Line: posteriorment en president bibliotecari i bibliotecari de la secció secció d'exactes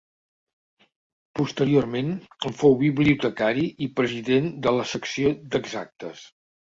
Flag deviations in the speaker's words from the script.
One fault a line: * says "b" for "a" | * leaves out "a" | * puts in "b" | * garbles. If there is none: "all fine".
* says "fou" for "president"
* says "president" for "bibliotecari"
* leaves out "secció"